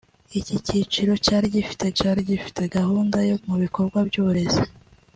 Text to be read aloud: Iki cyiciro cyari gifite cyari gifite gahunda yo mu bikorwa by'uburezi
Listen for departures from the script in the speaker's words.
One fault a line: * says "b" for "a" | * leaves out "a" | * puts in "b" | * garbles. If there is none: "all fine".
all fine